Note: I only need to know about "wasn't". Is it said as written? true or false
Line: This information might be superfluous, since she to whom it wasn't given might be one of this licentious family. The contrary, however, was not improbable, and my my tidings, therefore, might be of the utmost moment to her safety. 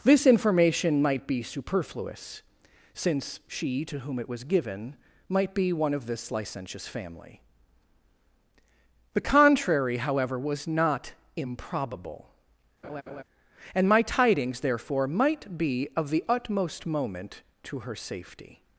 false